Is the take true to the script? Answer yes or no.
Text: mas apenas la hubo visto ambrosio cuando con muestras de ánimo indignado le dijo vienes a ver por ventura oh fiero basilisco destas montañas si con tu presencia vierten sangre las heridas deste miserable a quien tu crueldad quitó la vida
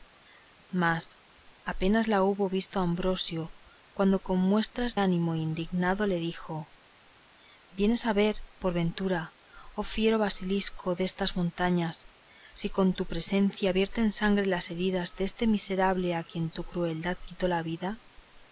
no